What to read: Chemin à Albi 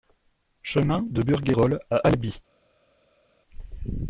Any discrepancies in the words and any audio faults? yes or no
yes